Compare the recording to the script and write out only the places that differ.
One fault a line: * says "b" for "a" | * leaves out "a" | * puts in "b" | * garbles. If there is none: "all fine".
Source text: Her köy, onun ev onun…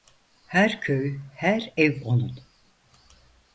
* says "her" for "onun"